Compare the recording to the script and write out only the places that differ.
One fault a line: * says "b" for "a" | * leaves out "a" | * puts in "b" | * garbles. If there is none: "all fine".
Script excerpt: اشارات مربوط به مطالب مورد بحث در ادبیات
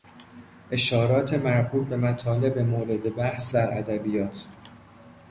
all fine